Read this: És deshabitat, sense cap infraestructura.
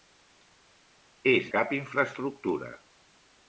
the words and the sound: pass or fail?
fail